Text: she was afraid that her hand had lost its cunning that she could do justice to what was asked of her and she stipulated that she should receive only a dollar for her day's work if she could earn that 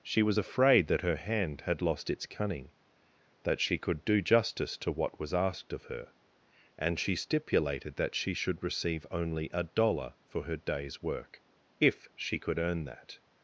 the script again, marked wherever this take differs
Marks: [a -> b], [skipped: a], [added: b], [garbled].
she was afraid that her hand had lost its cunning that she could do justice to what was asked of her and she stipulated that she should receive only a dollar for her day's work if she could earn that